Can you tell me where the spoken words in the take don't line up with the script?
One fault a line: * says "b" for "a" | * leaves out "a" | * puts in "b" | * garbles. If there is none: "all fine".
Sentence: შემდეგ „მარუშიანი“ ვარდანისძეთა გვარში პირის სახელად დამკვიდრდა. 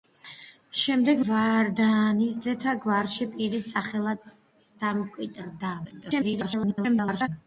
* leaves out "მარუშიანი"
* garbles